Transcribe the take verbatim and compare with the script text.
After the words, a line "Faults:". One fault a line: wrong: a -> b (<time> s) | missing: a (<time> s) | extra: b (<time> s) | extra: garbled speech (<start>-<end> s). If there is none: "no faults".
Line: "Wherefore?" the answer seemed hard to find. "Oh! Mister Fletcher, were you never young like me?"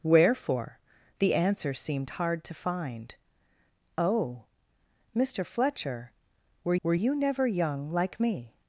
"Wherefore?" the answer seemed hard to find. "Oh! Mister Fletcher, were were you never young like me?"
Faults:
extra: were (6.8 s)